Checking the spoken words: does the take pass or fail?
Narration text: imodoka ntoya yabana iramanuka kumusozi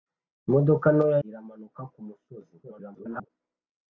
fail